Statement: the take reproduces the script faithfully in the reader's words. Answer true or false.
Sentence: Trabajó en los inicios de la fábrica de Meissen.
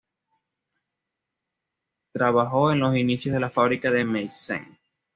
true